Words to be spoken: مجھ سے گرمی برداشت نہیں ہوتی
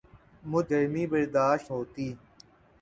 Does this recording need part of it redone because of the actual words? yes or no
yes